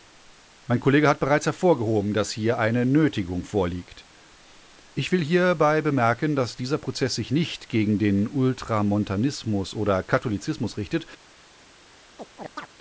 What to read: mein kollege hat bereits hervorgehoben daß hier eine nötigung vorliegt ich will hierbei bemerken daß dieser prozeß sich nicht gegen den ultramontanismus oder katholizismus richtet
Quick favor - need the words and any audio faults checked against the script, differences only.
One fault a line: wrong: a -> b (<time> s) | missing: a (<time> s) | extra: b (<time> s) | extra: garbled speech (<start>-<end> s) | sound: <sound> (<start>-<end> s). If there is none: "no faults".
sound: chirp (12.2-12.7 s)